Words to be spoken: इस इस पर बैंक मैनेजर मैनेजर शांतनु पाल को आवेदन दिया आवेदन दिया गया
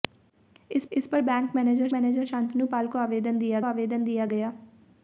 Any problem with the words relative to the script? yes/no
no